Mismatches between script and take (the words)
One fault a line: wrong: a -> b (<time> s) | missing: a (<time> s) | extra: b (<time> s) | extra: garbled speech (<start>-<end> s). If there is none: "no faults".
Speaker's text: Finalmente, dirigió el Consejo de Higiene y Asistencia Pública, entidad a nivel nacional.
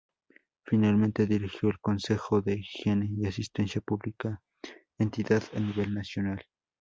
no faults